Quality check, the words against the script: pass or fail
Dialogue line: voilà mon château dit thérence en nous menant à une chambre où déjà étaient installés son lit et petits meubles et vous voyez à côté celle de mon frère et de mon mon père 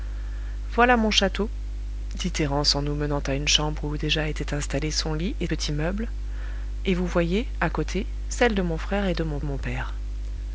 pass